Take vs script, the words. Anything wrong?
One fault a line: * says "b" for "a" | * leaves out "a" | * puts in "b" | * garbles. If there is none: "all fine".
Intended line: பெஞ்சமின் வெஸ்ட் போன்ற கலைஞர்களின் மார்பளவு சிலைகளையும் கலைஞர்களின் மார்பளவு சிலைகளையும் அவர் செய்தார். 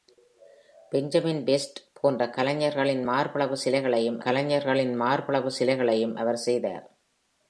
all fine